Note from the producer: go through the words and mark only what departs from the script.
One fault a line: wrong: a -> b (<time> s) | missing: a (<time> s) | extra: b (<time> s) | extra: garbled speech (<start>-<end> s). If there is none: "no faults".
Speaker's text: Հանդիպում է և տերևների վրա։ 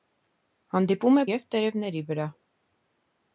no faults